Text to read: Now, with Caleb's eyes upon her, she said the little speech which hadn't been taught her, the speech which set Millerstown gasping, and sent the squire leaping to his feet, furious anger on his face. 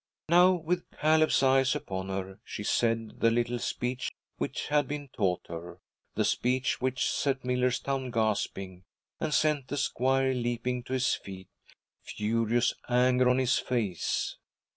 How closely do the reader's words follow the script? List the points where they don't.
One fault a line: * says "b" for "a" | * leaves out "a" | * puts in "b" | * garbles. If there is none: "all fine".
* says "had" for "hadn't"